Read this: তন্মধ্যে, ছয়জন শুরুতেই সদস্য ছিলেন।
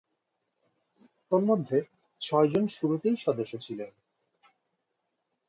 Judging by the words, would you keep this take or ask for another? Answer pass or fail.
pass